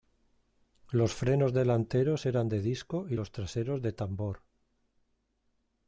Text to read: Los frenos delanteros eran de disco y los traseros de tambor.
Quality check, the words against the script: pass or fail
pass